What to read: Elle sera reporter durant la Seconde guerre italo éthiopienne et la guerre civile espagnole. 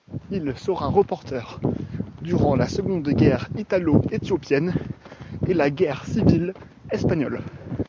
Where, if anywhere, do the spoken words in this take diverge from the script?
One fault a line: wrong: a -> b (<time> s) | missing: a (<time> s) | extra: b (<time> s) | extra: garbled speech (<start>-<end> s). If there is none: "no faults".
wrong: Elle -> Il (0.3 s)